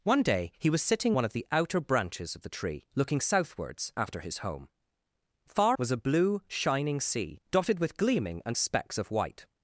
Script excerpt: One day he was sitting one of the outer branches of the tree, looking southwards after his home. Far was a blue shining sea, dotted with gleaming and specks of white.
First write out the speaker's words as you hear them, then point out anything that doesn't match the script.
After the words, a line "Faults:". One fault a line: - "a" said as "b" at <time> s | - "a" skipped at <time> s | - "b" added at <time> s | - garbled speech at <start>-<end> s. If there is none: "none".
One day he was sitting one of the outer branches of the tree, looking southwards after his home. Far was a blue shining sea, dotted with gleaming and specks of white.
Faults:
none